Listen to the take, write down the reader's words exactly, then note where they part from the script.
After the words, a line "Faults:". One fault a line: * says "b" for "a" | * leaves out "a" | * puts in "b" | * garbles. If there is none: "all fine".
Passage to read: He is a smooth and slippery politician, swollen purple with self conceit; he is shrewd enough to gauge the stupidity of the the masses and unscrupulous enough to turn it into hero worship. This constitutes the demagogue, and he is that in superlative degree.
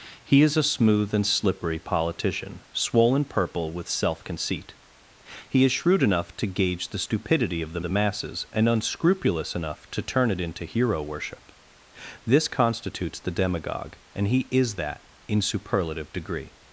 He is a smooth and slippery politician, swollen purple with self conceit; he is shrewd enough to gauge the stupidity of the the masses and unscrupulous enough to turn it into hero worship. This constitutes the demagogue, and he is that in superlative degree.
Faults:
all fine